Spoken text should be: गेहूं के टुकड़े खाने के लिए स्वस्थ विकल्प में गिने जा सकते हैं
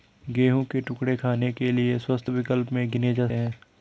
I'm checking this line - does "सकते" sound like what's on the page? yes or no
no